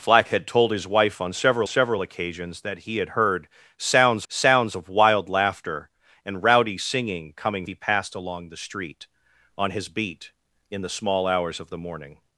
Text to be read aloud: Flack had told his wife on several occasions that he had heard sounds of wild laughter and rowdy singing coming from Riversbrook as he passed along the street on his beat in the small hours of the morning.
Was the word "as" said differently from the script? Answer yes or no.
yes